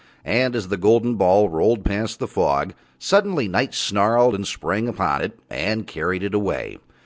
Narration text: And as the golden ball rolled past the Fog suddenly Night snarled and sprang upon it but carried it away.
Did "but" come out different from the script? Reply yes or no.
yes